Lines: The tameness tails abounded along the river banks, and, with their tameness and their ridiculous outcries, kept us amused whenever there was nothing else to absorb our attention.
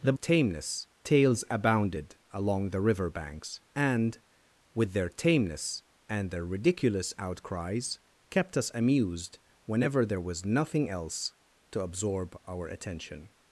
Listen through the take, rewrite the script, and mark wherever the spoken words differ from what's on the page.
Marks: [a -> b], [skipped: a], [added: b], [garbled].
The tameness tails abounded along the river banks, and, with their tameness and their ridiculous outcries, kept us amused whenever there was nothing else to absorb our attention.